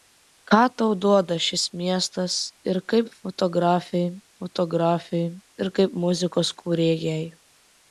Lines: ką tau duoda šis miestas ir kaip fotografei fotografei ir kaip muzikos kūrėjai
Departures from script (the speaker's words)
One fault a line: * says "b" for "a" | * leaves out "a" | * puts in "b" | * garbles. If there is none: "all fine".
all fine